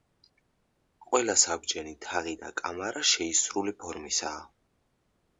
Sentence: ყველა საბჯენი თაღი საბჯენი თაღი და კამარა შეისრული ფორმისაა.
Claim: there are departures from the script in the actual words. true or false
true